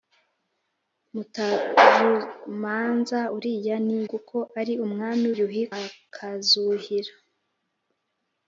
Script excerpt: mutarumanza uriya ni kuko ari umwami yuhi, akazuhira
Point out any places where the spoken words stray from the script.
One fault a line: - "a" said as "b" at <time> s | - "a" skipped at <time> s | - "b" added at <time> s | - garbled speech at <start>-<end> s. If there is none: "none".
none